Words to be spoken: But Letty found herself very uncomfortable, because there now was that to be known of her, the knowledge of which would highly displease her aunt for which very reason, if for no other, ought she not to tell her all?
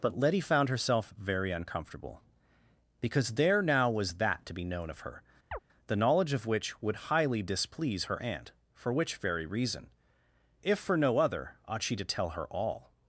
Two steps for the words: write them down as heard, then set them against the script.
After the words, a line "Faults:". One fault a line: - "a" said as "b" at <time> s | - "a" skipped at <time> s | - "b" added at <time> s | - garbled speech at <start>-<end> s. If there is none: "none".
But Letty found herself very uncomfortable, because there now was that to be known of her, the knowledge of which would highly displease her aunt for which very reason, if for no other, ought she to tell her all?
Faults:
- "not" skipped at 12.0 s